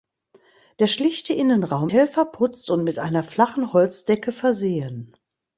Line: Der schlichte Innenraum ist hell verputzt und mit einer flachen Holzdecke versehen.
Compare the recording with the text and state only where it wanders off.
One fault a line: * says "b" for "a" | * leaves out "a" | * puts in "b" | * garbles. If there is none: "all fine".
* leaves out "ist"